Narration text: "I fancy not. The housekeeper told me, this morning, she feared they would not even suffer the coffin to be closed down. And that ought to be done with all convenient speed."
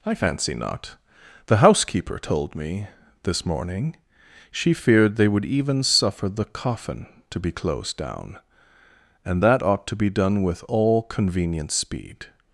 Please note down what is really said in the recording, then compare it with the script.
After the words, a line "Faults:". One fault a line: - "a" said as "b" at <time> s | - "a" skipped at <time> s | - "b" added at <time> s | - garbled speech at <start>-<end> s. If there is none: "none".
"I fancy not. The housekeeper told me, this morning, she feared they would even suffer the coffin to be closed down. And that ought to be done with all convenient speed."
Faults:
- "not" skipped at 5.4 s